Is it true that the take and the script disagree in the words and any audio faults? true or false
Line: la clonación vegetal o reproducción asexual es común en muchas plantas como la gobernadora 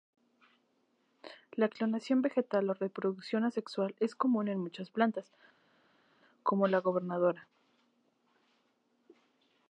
false